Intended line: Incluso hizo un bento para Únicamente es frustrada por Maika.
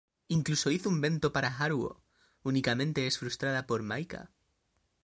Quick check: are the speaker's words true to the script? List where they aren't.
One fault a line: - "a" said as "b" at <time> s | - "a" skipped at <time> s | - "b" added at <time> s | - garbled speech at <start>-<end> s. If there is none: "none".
- "Haruo" added at 1.6 s